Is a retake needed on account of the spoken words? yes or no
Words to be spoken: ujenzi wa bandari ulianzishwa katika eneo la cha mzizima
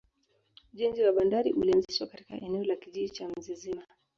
yes